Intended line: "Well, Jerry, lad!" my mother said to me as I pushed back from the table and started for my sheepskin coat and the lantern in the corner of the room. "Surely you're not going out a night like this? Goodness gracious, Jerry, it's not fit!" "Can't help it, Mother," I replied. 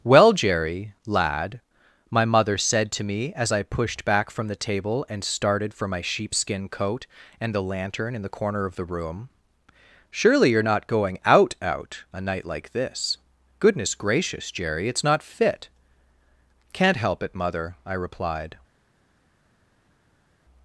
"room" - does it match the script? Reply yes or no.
yes